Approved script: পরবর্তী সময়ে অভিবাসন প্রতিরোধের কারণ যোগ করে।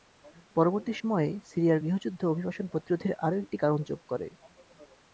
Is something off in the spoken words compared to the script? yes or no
yes